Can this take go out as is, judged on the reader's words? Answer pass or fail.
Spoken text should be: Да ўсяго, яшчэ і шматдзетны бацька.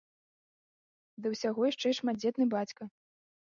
pass